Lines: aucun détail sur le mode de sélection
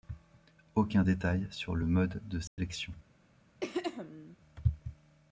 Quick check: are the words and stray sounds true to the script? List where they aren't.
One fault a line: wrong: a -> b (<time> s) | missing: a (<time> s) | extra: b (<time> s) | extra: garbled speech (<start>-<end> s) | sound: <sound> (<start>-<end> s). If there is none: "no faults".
sound: dropout (2.5-2.6 s)
sound: throat clearing (3.6-4.4 s)